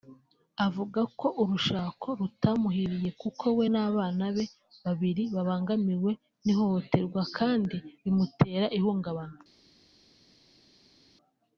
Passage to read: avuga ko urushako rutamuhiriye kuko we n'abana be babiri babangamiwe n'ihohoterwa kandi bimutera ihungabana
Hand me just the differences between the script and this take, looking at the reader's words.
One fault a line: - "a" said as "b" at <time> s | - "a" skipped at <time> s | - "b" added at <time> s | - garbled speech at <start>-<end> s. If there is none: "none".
none